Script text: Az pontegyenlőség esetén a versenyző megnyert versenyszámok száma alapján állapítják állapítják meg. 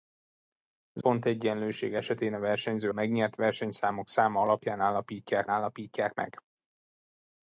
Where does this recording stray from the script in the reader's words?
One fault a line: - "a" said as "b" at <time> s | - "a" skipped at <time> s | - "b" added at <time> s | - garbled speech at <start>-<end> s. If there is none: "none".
none